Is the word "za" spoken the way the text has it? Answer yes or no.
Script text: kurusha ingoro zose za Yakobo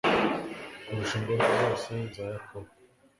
yes